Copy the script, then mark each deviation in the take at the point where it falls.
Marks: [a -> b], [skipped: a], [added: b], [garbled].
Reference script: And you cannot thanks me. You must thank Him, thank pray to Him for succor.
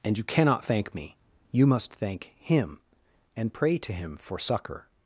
And you cannot [thanks -> thank] me. You must thank Him, [thank -> and] pray to Him for succor.